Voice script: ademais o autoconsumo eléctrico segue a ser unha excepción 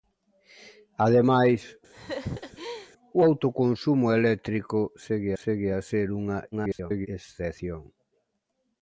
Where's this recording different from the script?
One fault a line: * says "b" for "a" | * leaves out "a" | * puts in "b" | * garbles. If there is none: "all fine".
* puts in "segue"
* garbles